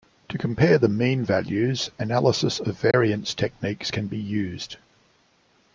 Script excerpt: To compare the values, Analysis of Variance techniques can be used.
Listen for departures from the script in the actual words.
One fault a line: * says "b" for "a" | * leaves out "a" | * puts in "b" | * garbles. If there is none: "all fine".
* puts in "mean"